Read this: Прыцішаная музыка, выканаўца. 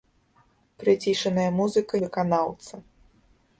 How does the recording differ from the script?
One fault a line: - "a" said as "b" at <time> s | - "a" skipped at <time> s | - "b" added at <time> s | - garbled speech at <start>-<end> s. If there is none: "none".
none